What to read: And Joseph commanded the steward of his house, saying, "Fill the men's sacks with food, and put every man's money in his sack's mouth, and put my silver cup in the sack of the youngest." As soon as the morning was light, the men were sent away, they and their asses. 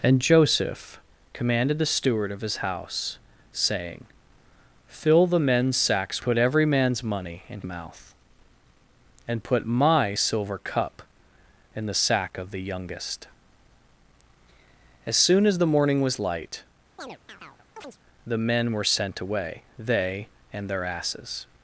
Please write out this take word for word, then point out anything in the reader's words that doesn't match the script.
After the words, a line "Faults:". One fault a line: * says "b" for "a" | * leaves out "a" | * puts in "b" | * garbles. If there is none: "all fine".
And Joseph commanded the steward of his house, saying, "Fill the men's sacks put every man's money in mouth, and put my silver cup in the sack of the youngest." As soon as the morning was light, the men were sent away, they and their asses.
Faults:
* leaves out "with food and"
* leaves out "his sack's"